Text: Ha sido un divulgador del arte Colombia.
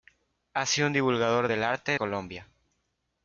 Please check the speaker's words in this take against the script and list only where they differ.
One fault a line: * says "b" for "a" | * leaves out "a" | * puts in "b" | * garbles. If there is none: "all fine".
all fine